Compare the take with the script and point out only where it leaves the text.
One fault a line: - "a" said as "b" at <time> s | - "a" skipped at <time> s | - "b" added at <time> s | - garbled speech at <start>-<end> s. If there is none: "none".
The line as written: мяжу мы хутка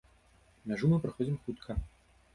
- "праходзім" added at 1.1 s